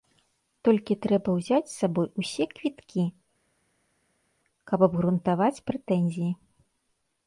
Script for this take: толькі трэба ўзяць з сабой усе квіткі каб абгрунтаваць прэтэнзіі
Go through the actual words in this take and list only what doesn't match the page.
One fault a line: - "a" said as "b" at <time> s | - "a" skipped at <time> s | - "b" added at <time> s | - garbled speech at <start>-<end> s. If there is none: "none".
none